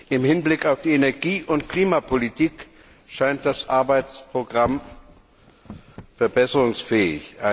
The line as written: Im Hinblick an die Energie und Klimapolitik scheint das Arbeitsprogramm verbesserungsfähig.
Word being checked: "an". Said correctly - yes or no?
no